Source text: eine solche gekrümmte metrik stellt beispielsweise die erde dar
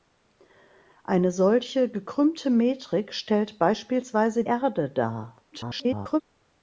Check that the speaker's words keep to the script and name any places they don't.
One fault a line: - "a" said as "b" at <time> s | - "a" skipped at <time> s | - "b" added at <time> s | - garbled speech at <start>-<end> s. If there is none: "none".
- "die" skipped at 4.5 s
- garbled speech at 5.5-6.2 s